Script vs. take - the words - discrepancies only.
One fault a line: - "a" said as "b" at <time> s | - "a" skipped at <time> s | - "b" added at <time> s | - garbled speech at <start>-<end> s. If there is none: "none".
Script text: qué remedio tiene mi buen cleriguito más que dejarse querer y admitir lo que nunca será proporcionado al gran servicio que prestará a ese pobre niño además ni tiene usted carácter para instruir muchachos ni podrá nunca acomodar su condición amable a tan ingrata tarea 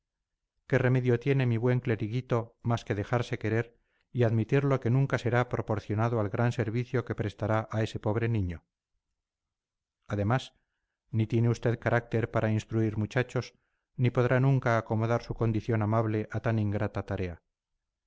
none